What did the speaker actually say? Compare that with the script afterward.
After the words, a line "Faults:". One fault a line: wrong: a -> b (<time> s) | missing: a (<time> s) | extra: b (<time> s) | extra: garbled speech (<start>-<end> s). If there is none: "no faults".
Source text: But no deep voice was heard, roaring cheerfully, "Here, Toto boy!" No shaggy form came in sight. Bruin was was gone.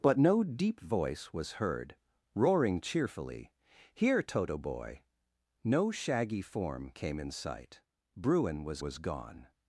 But no deep voice was heard, roaring cheerfully, "Here, Toto boy!" No shaggy form came in sight. Bruin was was gone.
Faults:
no faults